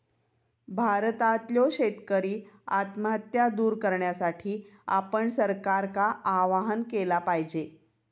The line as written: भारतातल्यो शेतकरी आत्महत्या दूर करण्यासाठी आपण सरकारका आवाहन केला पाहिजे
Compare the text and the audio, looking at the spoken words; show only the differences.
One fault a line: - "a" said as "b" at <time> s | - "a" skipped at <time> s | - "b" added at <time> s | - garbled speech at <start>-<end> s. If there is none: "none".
none